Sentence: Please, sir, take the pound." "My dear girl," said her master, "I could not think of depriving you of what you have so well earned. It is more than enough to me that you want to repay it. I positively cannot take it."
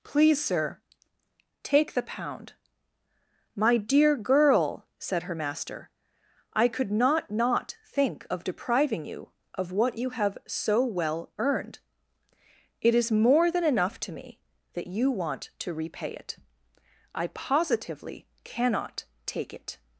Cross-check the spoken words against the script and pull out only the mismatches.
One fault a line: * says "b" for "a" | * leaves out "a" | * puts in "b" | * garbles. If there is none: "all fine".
* puts in "not"